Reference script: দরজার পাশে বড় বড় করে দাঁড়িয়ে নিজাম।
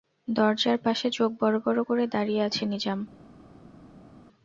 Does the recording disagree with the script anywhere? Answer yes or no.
yes